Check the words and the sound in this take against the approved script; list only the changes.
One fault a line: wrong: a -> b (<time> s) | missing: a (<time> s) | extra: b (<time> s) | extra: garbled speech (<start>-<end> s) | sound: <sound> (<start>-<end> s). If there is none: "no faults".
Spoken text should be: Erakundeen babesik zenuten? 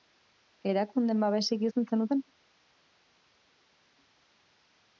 extra: izan (1.7 s)